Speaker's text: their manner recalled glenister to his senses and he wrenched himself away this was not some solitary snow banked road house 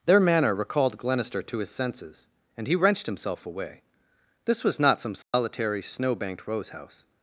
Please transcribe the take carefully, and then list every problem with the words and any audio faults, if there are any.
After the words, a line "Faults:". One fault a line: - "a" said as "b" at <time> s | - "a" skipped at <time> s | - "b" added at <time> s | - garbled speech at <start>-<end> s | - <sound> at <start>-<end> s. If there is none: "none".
their manner recalled glenister to his senses and he wrenched himself away this was not some solitary snow banked rose house
Faults:
- dropout at 5.2-5.3 s
- "road" said as "rose" at 6.5 s